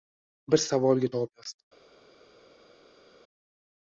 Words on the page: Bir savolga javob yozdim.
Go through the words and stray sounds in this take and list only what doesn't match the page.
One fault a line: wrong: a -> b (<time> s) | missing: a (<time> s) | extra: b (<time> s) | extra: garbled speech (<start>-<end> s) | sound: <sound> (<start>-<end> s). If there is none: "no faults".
no faults